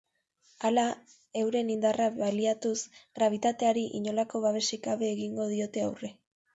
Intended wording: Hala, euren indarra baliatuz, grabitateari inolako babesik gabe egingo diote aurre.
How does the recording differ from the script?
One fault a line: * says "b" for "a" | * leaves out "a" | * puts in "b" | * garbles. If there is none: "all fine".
all fine